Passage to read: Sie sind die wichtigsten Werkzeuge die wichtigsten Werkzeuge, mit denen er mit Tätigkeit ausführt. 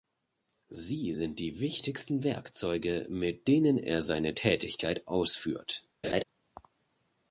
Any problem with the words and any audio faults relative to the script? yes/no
yes